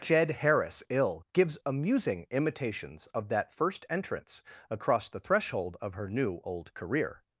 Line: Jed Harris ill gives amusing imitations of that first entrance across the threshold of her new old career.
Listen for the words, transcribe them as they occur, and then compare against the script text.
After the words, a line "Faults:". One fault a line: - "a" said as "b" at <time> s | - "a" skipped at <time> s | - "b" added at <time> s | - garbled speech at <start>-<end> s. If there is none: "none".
Jed Harris ill gives amusing imitations of that first entrance across the threshold of her new old career.
Faults:
none